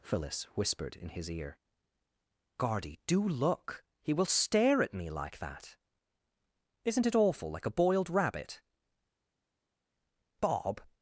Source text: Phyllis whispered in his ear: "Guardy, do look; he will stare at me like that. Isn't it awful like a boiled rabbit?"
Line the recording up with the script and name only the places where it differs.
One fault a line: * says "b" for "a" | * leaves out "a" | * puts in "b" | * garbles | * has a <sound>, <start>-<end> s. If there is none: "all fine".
* puts in "Bob"